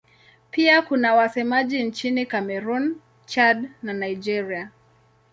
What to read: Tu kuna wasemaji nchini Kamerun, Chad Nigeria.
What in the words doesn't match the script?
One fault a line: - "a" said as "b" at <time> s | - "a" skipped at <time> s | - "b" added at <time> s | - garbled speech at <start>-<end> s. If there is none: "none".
- "Tu" said as "Pia" at 0.5 s
- "na" added at 3.8 s